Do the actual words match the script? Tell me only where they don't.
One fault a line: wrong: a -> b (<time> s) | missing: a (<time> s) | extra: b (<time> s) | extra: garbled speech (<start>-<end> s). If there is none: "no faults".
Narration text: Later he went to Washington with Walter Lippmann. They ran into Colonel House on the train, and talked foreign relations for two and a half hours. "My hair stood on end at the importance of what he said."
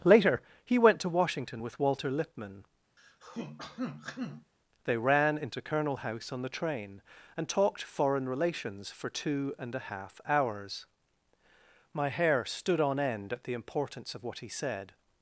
no faults